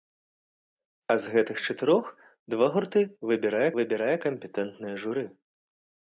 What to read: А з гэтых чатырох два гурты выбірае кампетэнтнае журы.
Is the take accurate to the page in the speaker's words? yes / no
no